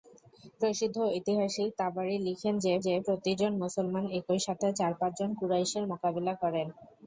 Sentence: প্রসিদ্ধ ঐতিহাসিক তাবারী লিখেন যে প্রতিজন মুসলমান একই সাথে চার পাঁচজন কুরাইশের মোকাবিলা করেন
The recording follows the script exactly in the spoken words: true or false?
false